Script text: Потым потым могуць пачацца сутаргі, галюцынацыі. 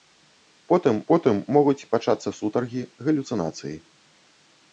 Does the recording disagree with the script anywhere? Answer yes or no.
no